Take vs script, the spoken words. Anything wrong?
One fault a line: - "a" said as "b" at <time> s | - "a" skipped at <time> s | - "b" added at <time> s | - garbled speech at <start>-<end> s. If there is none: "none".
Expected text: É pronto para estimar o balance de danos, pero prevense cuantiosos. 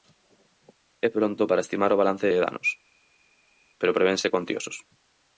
none